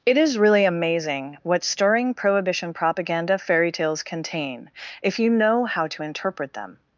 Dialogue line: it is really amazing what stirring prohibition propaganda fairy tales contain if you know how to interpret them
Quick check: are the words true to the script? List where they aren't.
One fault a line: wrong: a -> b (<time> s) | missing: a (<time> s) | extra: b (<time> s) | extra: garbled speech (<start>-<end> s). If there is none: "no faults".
no faults